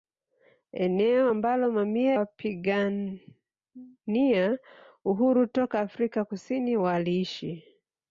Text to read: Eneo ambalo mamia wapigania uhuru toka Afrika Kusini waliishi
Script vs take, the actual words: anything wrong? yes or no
no